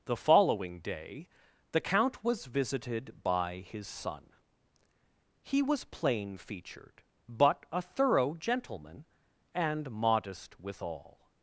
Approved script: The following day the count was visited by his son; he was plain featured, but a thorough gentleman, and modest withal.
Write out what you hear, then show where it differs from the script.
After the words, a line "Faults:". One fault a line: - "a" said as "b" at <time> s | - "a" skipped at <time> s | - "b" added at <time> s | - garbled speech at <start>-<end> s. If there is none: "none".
The following day the count was visited by his son; he was plain featured, but a thorough gentleman, and modest withal.
Faults:
none